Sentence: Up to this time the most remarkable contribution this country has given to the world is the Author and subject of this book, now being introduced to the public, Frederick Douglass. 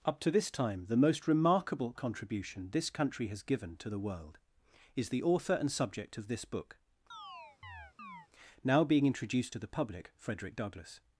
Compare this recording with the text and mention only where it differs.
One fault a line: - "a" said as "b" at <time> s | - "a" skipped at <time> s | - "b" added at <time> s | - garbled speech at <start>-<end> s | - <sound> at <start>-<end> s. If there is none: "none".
- chirp at 7.1-8.3 s